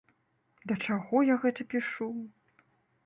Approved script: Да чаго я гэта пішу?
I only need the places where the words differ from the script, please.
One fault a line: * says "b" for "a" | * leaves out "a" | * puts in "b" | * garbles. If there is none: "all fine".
all fine